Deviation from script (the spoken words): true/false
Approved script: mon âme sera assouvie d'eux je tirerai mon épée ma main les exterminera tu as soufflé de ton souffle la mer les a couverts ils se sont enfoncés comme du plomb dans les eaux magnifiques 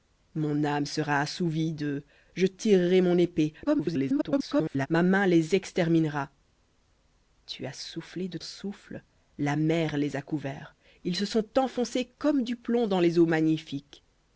true